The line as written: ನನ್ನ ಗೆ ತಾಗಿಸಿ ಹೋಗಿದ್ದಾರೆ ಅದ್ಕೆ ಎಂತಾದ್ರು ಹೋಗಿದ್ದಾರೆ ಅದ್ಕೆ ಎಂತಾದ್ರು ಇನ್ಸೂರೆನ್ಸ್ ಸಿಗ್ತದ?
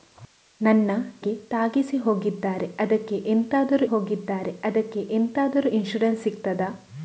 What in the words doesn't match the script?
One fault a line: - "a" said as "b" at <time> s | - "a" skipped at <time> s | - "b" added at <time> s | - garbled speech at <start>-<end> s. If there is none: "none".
none